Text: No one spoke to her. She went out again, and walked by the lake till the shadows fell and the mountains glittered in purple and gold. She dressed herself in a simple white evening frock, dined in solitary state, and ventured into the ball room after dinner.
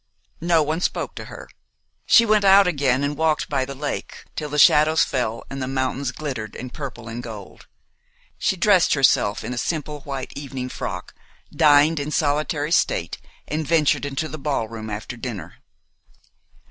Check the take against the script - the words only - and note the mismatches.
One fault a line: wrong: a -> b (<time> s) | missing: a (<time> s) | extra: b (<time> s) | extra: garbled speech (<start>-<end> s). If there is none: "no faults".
no faults